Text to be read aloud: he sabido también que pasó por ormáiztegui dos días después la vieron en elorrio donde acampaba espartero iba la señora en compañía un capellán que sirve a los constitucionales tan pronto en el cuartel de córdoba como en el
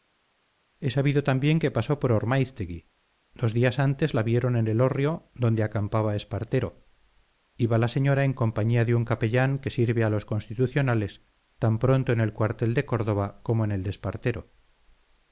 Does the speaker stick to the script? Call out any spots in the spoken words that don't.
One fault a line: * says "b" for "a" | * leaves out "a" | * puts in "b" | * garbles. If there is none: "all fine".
* says "antes" for "después"
* puts in "de"